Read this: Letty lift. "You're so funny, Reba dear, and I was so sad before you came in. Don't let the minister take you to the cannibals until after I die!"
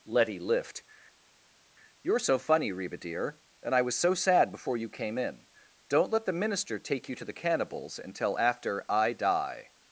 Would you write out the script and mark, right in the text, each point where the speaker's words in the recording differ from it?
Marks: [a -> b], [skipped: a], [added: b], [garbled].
Letty lift. "You're so funny, Reba dear, and I was so sad before you came in. Don't let the minister take you to the cannibals until after I die!"